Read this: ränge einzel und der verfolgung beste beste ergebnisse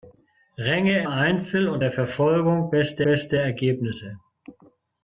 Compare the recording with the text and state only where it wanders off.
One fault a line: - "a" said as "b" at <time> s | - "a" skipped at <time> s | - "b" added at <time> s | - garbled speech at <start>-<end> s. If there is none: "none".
none